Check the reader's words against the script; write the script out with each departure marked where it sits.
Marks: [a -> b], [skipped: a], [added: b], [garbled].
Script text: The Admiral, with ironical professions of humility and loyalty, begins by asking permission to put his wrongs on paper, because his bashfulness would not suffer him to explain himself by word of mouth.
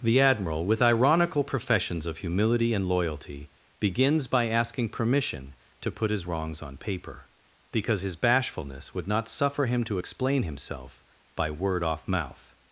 The Admiral, with ironical professions of humility and loyalty, begins by asking permission to put his wrongs on paper, because his bashfulness would not suffer him to explain himself by word [of -> off] mouth.